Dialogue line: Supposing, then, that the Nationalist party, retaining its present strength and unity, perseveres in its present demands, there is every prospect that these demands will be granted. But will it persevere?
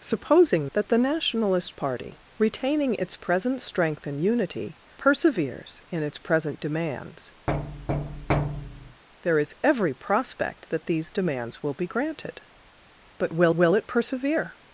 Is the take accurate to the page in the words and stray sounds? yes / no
no